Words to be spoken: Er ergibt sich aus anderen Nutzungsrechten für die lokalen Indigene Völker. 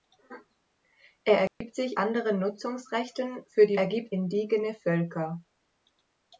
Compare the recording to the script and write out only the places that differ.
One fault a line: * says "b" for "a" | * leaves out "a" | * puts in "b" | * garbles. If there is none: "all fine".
* leaves out "aus"
* says "ergibt" for "lokalen"